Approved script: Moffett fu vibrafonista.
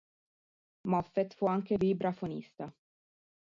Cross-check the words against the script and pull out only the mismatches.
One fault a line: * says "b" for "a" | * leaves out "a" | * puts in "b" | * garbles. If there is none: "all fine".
* puts in "anche"